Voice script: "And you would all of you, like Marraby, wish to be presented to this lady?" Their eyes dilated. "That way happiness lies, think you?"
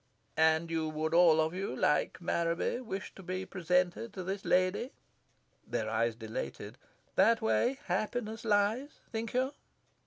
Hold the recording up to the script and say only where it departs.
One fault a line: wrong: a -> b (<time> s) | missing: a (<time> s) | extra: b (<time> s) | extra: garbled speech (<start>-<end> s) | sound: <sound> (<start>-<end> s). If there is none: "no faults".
no faults